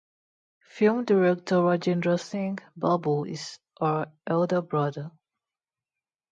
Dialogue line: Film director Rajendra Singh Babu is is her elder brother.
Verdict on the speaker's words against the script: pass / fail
fail